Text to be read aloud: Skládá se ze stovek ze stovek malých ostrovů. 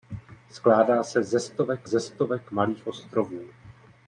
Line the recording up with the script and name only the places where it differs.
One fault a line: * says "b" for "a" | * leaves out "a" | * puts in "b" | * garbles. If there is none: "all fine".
all fine